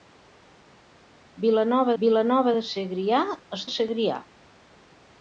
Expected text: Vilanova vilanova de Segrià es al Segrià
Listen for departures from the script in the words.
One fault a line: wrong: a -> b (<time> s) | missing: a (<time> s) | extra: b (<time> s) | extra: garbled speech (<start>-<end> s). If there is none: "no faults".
no faults